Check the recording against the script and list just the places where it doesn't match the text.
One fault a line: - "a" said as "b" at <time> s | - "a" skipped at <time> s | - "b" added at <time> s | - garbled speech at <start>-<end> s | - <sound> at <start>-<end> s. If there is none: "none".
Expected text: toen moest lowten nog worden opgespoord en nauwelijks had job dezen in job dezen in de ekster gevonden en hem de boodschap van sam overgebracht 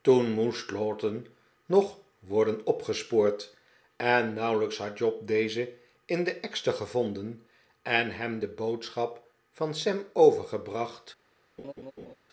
- "job dezen in" skipped at 6.2 s
- laugh at 11.6-12.2 s